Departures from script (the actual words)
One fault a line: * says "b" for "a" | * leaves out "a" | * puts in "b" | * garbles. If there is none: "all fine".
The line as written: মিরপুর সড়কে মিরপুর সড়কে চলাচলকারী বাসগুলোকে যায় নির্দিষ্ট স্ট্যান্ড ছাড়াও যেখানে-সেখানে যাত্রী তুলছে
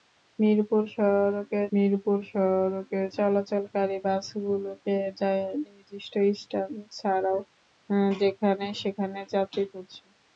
all fine